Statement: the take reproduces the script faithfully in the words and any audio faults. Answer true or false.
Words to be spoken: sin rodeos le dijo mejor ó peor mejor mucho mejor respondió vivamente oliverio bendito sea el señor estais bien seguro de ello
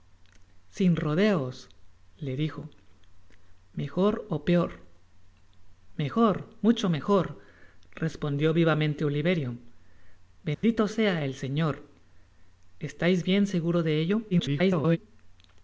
false